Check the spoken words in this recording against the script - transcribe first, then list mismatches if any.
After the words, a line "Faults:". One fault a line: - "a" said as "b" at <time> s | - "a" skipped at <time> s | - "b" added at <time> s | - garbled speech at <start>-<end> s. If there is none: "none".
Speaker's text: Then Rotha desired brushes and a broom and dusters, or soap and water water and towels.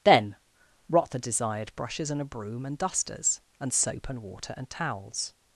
Then Rotha desired brushes and a broom and dusters, and soap and water and towels.
Faults:
- "or" said as "and" at 3.6 s
- "water" skipped at 4.5 s